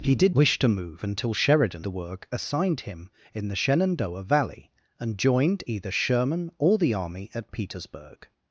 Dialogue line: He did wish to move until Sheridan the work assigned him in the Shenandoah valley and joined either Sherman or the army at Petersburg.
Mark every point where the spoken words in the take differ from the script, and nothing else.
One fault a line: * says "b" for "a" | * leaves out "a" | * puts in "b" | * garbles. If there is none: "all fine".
all fine